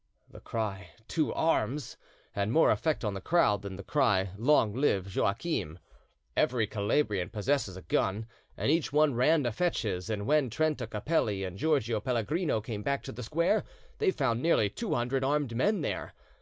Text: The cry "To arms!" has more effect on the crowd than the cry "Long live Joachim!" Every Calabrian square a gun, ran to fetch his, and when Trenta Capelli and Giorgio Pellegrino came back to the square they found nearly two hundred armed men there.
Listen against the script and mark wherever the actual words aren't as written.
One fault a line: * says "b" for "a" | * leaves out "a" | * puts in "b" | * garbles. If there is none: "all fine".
* says "had" for "has"
* says "possesses" for "square"
* puts in "and each one"